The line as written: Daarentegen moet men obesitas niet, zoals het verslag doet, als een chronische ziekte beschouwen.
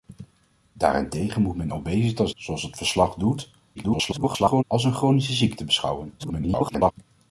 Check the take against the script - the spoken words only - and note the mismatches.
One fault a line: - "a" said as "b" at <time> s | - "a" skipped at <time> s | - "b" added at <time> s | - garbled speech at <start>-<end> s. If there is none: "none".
- "niet" skipped at 2.3 s
- garbled speech at 3.7-4.6 s
- garbled speech at 6.2-6.9 s